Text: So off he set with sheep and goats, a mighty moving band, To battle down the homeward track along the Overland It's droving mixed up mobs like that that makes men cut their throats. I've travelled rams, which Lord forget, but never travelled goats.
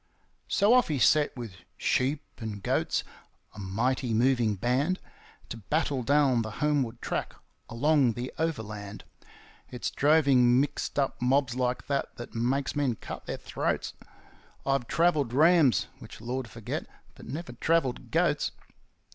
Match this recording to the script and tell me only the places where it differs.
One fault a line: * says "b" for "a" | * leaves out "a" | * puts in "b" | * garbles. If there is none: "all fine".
all fine